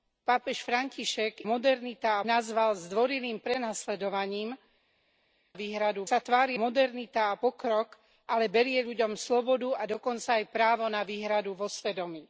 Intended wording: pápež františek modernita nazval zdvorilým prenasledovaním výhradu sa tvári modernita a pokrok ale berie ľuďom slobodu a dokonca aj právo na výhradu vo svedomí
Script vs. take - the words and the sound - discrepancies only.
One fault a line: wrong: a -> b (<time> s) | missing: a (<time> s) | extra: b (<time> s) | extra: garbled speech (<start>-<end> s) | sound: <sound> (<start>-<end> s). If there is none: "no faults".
no faults